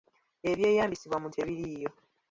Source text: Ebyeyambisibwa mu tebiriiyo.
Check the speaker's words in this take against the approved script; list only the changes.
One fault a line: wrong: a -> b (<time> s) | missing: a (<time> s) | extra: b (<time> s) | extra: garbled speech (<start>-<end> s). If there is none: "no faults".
no faults